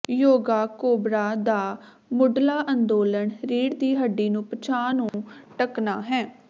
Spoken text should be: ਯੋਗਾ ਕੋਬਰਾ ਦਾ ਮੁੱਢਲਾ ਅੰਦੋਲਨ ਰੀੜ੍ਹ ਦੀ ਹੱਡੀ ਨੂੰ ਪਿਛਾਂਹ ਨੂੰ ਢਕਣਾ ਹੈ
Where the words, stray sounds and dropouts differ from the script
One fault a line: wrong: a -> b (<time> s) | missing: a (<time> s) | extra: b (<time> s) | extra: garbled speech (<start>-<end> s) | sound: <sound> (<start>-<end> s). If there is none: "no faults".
sound: dropout (5.1-5.1 s)